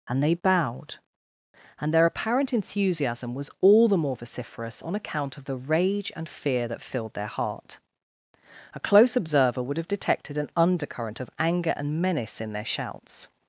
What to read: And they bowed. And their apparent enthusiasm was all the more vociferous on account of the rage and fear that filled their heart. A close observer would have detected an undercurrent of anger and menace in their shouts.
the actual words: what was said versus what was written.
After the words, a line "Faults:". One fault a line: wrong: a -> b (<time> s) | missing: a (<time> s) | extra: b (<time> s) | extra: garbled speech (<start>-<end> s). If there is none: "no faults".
And they bowed. And their apparent enthusiasm was all the more vociferous on account of the rage and fear that filled their heart. A close observer would have detected an undercurrent of anger and menace in their shouts.
Faults:
no faults